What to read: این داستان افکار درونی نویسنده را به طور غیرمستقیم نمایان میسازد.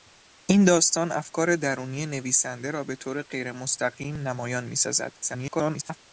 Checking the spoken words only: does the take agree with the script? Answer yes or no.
no